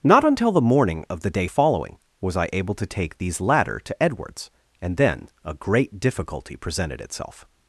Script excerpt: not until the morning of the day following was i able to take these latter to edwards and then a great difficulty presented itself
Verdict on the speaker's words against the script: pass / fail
pass